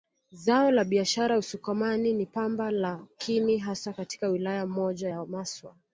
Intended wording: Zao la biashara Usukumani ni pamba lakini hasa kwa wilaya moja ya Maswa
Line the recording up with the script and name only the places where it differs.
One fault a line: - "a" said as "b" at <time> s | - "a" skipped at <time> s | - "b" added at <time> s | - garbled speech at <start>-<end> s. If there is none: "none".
- "kwa" said as "katika" at 3.9 s